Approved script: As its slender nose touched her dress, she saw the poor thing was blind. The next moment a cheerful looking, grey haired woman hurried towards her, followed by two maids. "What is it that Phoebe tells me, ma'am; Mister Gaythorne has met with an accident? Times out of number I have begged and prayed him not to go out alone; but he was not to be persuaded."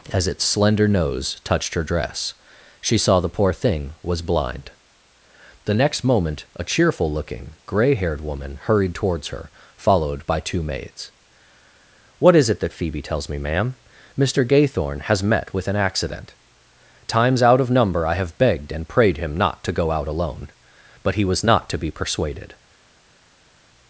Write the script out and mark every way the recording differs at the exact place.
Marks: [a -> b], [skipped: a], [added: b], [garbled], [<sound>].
As its slender nose touched her dress, she saw the poor thing was blind. The next moment a cheerful looking, grey haired woman hurried towards her, followed by two maids. "What is it that Phoebe tells me, ma'am; Mister Gaythorne has met with an accident? Times out of number I have begged and prayed him not to go out alone; but he was not to be persuaded."